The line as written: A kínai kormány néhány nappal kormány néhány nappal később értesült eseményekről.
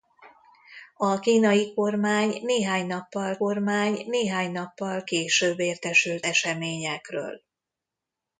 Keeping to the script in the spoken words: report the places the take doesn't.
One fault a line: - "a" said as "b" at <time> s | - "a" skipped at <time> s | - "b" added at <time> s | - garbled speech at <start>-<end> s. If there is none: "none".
none